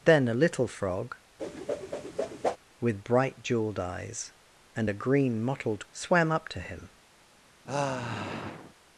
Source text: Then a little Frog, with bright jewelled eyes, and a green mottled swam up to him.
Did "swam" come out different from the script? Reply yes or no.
no